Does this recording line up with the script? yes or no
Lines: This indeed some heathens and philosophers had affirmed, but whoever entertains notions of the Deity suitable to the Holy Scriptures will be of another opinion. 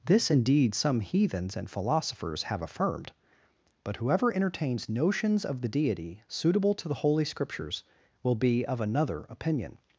no